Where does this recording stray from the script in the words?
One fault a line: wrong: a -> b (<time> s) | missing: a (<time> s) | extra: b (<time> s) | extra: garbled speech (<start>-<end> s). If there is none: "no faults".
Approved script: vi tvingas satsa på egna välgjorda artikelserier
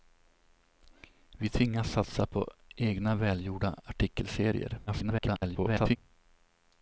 extra: garbled speech (4.9-6.0 s)